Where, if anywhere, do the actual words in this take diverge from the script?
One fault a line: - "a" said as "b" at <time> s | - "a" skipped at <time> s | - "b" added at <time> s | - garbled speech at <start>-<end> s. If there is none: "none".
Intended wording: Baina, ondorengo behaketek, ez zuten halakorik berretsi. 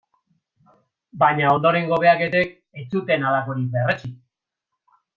none